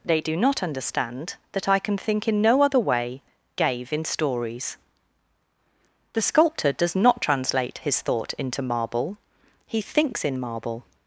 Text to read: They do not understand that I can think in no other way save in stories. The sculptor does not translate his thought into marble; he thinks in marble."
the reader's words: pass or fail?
fail